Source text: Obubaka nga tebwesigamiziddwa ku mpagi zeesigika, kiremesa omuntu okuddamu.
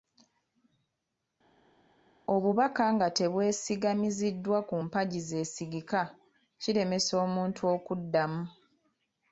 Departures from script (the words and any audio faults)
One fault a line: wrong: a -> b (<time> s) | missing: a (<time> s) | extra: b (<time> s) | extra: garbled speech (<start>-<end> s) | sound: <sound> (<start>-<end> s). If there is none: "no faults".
no faults